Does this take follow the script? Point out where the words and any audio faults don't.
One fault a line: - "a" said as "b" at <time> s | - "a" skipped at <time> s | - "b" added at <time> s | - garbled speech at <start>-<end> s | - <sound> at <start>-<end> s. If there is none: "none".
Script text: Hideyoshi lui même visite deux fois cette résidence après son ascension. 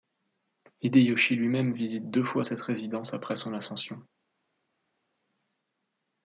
none